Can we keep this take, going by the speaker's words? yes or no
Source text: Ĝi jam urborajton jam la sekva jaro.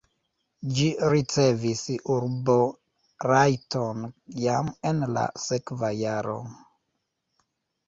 no